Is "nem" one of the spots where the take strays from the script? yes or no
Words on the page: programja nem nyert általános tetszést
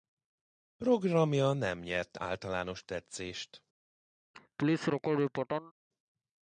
no